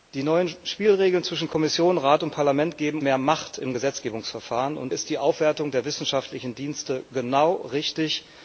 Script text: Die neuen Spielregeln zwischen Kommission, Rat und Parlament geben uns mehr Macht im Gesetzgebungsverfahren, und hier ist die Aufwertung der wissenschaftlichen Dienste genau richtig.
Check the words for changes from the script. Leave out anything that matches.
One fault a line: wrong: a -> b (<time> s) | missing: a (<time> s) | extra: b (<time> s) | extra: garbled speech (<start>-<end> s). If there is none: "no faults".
missing: uns (3.0 s)
missing: hier (4.9 s)